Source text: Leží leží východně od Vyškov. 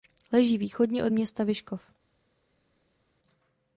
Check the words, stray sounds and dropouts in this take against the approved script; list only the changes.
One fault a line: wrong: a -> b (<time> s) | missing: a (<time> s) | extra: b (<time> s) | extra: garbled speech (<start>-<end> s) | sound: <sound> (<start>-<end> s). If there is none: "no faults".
missing: leží (0.6 s)
extra: města (1.1 s)